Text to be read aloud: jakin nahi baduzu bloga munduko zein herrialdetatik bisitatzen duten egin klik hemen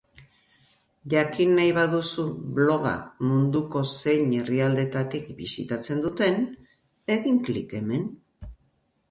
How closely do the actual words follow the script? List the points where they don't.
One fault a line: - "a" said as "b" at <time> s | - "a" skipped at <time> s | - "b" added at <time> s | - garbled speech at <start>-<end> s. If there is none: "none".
none